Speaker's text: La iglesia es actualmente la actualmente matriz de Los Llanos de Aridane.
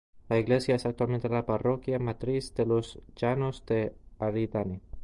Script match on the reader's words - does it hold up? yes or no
no